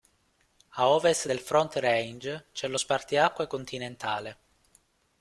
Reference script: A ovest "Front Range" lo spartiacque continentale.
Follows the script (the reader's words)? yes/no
no